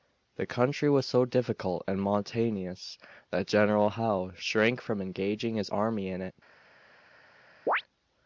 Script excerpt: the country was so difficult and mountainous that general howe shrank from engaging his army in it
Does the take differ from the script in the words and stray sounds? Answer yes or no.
yes